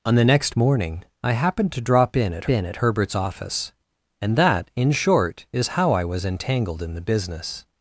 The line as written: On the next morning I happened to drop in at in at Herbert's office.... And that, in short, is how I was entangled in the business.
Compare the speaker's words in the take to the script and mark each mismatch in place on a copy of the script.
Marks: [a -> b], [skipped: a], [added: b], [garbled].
On the next morning I happened to drop in at in at Herbert's office.... And that, in short, is how I was entangled in the business.